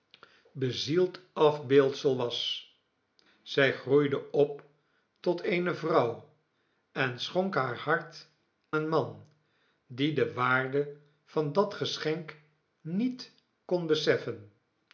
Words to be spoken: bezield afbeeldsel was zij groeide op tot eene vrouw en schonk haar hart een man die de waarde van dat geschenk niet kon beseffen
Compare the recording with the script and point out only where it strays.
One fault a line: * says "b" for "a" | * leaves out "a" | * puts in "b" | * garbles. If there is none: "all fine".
all fine